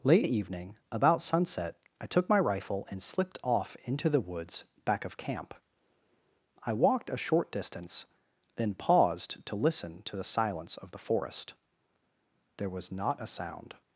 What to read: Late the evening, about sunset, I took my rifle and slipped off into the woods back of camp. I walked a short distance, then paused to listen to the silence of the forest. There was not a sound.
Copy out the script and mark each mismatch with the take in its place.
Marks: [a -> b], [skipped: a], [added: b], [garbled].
Late the evening, about sunset, I took my rifle and slipped off into the woods back of camp. I walked a short distance, then paused to listen to the silence of the forest. There was not a sound.